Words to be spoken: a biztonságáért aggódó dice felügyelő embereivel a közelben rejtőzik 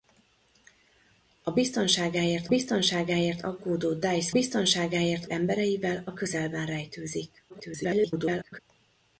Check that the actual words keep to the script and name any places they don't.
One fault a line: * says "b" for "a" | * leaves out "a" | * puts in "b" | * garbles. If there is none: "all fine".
* puts in "biztonságáért"
* says "biztonságáért" for "felügyelő"
* garbles